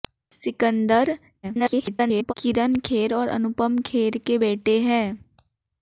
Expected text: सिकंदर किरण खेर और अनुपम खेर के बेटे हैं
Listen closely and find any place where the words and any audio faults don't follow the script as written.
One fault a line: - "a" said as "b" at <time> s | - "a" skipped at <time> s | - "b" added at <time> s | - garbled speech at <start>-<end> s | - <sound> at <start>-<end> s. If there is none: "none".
- garbled speech at 1.4-2.3 s